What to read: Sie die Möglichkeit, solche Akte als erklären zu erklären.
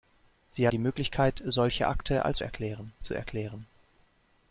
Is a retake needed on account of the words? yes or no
no